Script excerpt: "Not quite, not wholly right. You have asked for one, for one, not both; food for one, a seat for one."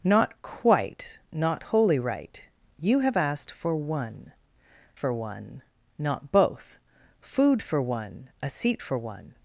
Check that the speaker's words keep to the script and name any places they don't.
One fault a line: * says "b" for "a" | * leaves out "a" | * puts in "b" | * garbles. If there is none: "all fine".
all fine